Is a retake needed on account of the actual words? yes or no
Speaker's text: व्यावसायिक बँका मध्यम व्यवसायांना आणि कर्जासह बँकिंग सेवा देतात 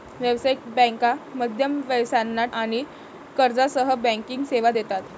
no